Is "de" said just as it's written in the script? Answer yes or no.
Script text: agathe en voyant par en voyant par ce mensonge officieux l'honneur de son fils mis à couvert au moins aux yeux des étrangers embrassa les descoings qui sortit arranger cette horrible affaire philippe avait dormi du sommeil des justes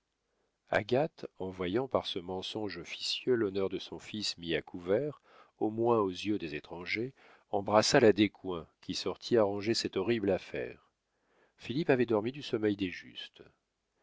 yes